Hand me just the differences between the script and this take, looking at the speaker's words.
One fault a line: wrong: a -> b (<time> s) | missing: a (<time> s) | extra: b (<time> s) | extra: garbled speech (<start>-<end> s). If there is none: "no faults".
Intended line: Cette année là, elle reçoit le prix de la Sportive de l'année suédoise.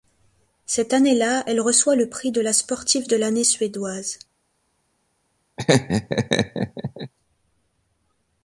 no faults